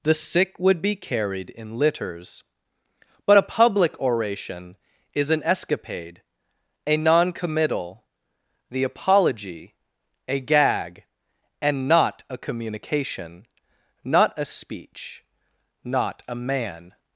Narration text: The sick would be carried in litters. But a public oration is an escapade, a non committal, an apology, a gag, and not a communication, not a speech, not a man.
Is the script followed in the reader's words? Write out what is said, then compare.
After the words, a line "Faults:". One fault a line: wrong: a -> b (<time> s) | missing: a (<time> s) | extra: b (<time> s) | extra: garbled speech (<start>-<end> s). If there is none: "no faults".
The sick would be carried in litters. But a public oration is an escapade, a non committal, the apology, a gag, and not a communication, not a speech, not a man.
Faults:
wrong: an -> the (8.7 s)